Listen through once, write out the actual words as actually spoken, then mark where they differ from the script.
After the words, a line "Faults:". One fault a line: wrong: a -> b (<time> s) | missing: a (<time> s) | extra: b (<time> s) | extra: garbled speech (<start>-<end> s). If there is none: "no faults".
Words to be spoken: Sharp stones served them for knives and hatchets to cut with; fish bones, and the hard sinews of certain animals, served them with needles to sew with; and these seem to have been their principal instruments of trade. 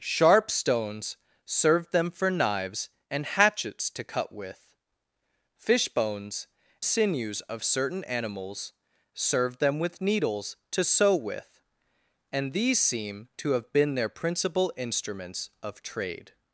Sharp stones served them for knives and hatchets to cut with; fish bones, sinews of certain animals, served them with needles to sew with; and these seem to have been their principal instruments of trade.
Faults:
missing: and the hard (6.5 s)